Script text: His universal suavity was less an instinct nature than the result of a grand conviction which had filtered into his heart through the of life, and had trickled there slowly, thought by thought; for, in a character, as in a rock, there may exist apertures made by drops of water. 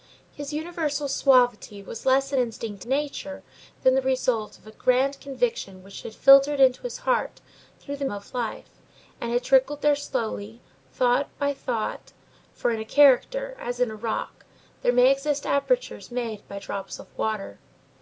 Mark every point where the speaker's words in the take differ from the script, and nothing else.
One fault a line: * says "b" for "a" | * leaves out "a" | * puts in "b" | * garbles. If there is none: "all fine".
all fine